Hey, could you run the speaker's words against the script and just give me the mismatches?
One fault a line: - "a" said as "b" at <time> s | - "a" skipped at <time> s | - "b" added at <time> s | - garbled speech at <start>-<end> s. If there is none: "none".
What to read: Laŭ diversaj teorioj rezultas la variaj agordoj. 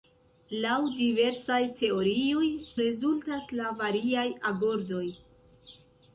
none